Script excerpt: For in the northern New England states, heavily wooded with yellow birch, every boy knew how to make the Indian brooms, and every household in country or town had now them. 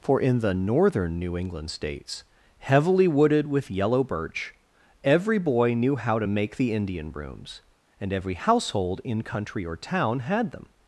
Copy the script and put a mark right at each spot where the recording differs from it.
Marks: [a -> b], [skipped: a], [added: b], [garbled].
For in the northern New England states, heavily wooded with yellow birch, every boy knew how to make the Indian brooms, and every household in country or town had [skipped: now] them.